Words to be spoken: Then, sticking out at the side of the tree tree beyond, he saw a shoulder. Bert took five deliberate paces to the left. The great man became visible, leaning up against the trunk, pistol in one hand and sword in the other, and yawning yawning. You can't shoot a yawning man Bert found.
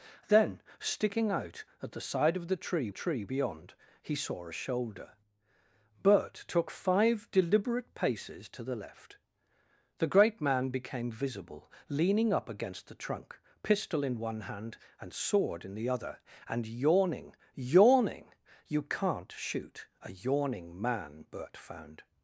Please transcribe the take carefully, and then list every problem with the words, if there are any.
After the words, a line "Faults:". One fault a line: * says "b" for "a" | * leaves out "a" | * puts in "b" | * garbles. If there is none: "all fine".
Then, sticking out at the side of the tree tree beyond, he saw a shoulder. Bert took five deliberate paces to the left. The great man became visible, leaning up against the trunk, pistol in one hand and sword in the other, and yawning yawning. You can't shoot a yawning man Bert found.
Faults:
all fine